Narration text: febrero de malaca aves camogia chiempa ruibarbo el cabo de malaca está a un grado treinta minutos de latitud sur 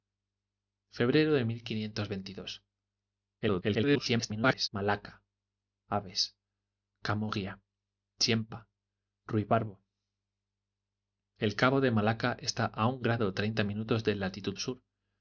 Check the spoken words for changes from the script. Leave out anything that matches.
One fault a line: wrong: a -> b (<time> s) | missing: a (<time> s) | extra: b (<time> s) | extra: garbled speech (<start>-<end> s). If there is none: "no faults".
extra: garbled speech (3.4-4.7 s)